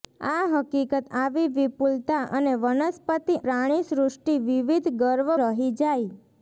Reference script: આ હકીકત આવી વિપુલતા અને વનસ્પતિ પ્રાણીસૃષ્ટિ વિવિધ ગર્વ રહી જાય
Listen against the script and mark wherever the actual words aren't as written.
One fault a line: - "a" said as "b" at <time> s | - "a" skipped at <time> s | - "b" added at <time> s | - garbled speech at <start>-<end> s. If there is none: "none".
none